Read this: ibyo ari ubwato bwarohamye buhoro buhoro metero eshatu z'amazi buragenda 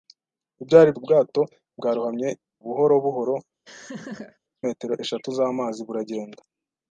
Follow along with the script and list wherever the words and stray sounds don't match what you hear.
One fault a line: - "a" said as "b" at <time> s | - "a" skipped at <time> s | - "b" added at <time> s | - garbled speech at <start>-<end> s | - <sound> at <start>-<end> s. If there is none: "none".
- laugh at 3.7-4.4 s